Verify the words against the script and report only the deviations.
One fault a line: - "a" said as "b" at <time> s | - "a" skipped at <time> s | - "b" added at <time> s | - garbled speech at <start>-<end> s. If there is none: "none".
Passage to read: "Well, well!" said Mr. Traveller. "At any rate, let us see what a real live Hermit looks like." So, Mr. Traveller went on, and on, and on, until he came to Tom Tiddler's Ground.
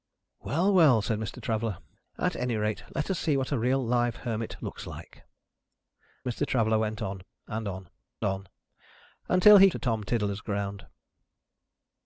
- "So" skipped at 5.2 s
- "and" skipped at 7.9 s
- "came" skipped at 9.7 s